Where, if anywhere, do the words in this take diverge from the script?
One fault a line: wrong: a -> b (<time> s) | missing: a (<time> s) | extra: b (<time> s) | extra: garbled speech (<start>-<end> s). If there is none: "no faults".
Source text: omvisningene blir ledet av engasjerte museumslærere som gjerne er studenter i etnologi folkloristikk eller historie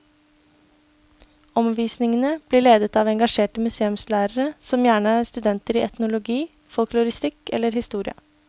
no faults